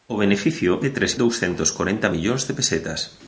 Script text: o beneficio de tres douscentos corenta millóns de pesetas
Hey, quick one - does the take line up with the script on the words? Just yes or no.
yes